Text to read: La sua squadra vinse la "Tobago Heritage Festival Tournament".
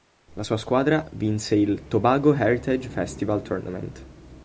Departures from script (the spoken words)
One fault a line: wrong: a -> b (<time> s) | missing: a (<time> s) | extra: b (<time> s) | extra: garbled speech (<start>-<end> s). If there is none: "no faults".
wrong: la -> il (1.6 s)